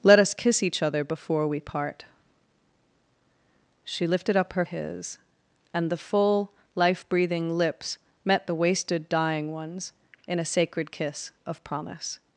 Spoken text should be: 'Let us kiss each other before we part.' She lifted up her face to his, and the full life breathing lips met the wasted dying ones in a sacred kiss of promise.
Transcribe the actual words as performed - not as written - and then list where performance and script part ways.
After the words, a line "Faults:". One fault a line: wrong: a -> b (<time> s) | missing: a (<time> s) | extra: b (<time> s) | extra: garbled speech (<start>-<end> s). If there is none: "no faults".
'Let us kiss each other before we part.' She lifted up her his, and the full life breathing lips met the wasted dying ones in a sacred kiss of promise.
Faults:
missing: face to (4.7 s)